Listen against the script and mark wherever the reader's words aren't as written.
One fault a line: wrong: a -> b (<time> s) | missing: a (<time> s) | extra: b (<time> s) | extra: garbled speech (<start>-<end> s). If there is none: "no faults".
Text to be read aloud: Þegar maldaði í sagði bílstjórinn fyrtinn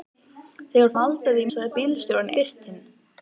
no faults